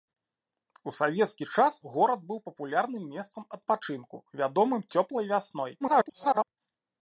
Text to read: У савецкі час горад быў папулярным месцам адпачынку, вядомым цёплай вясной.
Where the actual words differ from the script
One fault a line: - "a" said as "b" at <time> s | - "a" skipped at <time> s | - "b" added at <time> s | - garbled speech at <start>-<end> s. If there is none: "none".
- garbled speech at 5.8-6.4 s